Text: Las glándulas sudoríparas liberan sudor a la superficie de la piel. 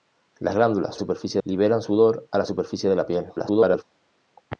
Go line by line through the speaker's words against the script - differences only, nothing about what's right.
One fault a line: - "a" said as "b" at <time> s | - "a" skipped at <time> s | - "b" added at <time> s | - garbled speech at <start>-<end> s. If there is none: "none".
- "sudoríparas" said as "superficie" at 1.0 s
- garbled speech at 3.4-3.8 s